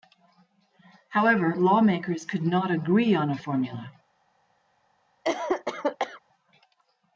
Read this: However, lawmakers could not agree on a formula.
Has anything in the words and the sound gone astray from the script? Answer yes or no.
yes